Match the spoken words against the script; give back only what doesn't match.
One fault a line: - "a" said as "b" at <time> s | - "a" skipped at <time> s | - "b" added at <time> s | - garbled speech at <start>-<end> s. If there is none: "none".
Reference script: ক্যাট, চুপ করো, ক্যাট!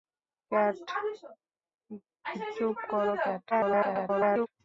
- garbled speech at 3.5-4.5 s